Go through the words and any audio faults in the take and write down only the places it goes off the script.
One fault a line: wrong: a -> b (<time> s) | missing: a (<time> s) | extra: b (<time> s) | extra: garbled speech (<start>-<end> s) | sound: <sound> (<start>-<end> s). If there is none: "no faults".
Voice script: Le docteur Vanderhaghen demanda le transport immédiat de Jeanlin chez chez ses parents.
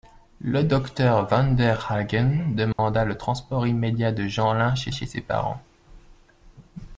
sound: dropout (2.7-2.8 s)